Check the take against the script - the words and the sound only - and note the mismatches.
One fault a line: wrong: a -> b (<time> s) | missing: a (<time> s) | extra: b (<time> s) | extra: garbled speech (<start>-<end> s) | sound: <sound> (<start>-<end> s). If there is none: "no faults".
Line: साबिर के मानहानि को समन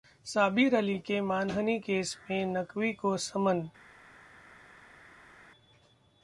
extra: अली (0.8 s)
extra: केस में नकवी (1.8 s)